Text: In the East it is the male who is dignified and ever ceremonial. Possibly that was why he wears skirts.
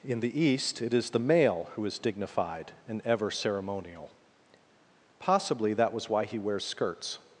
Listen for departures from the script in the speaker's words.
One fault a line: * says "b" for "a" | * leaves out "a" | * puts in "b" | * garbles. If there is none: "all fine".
all fine